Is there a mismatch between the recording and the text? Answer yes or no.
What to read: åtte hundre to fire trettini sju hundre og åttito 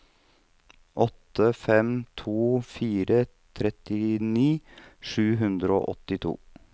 yes